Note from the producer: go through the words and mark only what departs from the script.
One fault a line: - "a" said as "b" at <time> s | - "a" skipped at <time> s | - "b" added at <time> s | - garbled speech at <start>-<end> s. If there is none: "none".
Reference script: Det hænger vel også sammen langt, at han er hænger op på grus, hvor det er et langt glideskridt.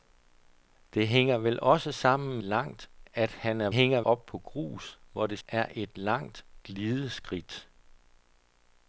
none